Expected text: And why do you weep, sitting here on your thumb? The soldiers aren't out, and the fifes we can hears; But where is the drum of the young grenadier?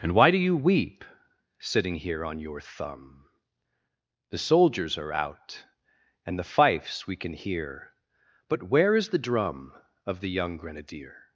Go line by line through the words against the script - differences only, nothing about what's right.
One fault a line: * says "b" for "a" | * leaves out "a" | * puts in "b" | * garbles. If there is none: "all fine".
* says "are" for "aren't"
* says "hear" for "hears"